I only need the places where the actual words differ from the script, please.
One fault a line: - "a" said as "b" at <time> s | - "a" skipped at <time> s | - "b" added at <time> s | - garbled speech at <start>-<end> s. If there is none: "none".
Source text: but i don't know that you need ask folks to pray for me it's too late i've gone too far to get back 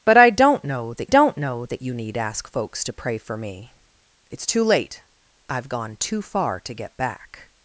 - "don't know that" added at 1.1 s